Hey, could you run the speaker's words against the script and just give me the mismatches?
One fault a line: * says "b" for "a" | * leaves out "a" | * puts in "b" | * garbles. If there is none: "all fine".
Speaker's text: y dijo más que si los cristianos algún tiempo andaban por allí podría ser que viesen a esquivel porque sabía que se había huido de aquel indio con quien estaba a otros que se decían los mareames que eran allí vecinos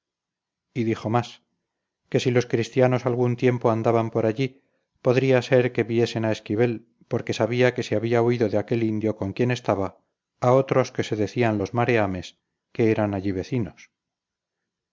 all fine